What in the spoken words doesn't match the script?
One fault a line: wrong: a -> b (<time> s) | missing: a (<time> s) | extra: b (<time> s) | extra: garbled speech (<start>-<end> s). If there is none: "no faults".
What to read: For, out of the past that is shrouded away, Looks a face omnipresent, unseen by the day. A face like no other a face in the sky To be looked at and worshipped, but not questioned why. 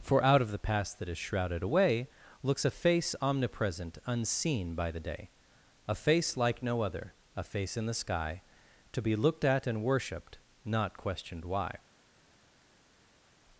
missing: but (10.4 s)